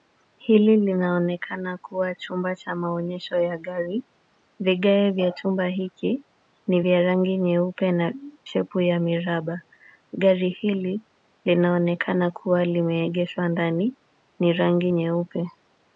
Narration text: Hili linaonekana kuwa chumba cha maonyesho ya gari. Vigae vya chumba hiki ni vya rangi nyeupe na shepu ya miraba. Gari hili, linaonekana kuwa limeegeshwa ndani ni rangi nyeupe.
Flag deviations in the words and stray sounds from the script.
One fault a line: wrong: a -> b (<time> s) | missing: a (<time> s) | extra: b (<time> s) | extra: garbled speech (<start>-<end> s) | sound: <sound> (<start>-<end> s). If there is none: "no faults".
no faults